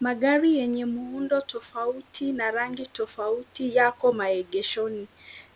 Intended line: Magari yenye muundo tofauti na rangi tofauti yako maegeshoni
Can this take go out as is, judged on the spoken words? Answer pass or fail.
pass